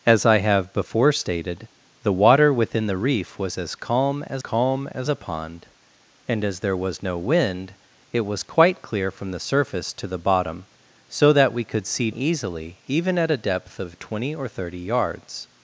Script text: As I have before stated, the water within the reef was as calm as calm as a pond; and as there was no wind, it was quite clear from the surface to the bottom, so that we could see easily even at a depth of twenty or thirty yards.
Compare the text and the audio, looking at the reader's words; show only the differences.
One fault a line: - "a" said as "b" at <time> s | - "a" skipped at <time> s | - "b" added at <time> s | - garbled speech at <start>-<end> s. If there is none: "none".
none